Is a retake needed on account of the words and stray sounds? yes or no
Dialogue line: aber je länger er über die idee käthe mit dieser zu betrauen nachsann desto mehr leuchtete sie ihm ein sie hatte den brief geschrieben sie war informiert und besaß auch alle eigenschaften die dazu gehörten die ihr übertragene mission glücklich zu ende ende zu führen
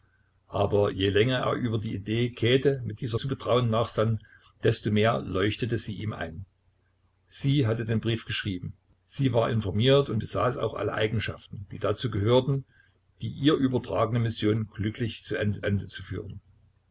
no